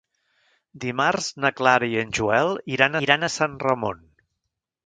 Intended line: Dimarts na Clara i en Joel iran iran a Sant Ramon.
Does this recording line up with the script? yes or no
yes